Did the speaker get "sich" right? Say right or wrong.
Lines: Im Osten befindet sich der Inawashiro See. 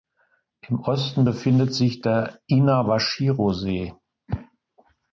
right